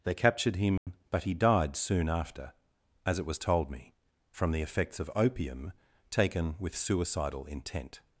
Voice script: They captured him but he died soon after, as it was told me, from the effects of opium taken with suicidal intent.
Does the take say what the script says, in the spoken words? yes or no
yes